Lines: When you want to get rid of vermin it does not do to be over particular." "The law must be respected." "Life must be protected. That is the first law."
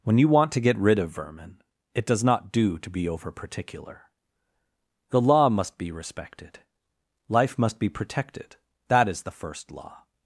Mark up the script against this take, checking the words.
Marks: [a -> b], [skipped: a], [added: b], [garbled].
When you want to get rid of vermin it does not do to be over particular." "The law must be respected." "Life must be protected. That is the first law."